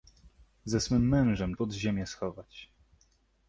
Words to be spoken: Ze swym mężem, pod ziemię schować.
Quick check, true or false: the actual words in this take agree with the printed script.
true